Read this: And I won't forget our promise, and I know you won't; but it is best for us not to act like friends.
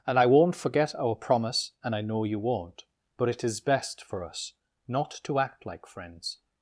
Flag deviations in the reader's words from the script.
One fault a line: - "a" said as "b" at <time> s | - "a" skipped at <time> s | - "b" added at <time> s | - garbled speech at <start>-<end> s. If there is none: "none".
none